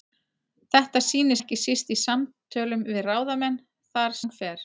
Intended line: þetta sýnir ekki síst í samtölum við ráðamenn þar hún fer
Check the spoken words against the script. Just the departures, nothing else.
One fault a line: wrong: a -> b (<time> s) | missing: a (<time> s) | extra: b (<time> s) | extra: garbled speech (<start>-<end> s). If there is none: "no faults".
no faults